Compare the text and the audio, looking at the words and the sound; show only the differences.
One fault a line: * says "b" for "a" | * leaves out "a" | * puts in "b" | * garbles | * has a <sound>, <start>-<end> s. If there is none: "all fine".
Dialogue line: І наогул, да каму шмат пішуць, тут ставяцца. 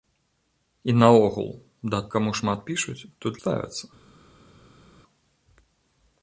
all fine